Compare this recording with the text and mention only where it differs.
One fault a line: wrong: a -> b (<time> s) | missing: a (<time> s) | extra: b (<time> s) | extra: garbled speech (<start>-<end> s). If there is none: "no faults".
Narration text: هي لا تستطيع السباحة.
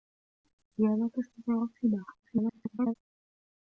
extra: garbled speech (2.2-2.9 s)